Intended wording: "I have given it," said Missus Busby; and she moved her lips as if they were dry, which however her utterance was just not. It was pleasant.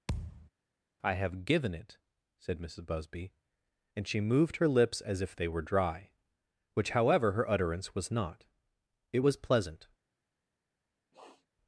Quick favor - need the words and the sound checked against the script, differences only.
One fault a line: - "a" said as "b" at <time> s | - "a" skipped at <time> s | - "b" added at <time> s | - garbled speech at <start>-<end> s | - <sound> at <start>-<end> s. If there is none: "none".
- thud at 0.1-0.5 s
- "just" skipped at 8.1 s
- sniff at 11.1-11.5 s